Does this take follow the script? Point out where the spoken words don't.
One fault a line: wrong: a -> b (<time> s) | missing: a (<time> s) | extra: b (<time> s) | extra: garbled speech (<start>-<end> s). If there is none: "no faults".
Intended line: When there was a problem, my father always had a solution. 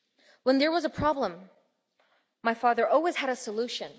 no faults